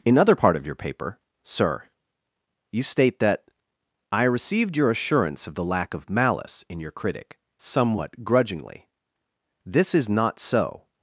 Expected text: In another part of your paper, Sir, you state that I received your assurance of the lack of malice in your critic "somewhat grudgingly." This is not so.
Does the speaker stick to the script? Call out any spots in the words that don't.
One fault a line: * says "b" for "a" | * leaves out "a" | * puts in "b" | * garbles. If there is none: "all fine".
* says "other" for "another"